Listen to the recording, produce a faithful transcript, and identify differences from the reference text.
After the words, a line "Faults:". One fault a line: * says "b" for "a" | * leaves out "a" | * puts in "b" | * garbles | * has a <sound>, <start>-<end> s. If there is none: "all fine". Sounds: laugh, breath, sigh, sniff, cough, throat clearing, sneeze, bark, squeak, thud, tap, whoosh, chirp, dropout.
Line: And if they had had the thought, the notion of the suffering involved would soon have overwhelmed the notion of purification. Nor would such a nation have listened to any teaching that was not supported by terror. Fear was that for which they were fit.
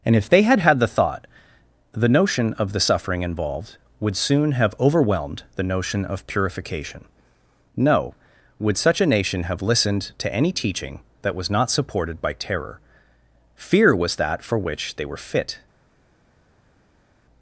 And if they had had the thought, the notion of the suffering involved would soon have overwhelmed the notion of purification. No would such a nation have listened to any teaching that was not supported by terror. Fear was that for which they were fit.
Faults:
* says "No" for "Nor"